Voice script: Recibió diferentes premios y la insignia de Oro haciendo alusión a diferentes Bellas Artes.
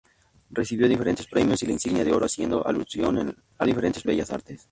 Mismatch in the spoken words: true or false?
false